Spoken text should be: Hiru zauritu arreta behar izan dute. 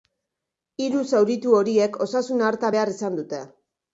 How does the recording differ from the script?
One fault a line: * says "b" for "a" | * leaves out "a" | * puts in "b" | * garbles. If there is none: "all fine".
* puts in "horiek osasun"